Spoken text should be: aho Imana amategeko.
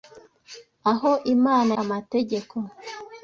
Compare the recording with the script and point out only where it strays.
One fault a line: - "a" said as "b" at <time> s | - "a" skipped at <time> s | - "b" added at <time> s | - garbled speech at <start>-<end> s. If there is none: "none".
none